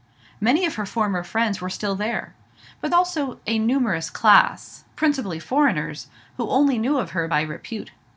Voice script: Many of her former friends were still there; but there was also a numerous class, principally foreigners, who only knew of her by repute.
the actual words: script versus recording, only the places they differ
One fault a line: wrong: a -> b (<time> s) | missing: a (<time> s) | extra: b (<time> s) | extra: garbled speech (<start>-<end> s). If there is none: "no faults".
missing: there was (2.9 s)